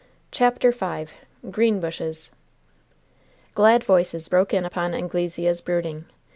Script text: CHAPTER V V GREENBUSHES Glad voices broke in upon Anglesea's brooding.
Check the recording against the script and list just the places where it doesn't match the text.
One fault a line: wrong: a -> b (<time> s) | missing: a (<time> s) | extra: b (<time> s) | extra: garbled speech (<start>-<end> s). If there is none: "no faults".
missing: V (1.1 s)